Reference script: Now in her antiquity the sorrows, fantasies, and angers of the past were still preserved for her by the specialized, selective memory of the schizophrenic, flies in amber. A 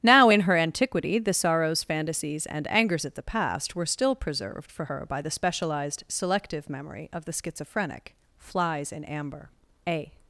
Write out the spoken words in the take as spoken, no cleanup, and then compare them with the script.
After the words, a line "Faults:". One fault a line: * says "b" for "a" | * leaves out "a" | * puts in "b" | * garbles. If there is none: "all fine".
Now in her antiquity the sorrows, fantasies, and angers of the past were still preserved for her by the specialized, selective memory of the schizophrenic, flies in amber. A
Faults:
all fine